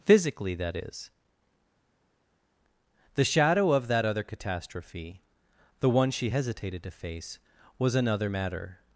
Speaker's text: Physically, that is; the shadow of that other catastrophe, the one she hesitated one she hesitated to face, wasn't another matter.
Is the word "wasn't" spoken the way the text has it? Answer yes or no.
no